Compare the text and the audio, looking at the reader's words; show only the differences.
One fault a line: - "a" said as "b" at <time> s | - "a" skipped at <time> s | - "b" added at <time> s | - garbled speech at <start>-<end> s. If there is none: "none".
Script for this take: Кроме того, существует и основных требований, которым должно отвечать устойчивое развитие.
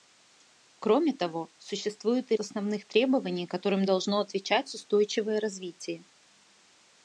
none